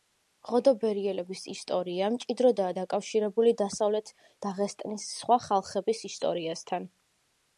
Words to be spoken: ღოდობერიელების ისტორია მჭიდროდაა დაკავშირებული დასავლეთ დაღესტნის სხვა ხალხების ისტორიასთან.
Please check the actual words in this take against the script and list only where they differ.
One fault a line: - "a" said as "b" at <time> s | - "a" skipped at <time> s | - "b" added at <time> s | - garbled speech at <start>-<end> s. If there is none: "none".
none